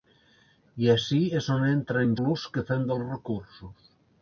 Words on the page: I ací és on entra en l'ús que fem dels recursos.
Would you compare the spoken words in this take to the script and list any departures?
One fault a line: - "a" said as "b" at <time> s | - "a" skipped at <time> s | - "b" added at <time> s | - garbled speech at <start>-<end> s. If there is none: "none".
none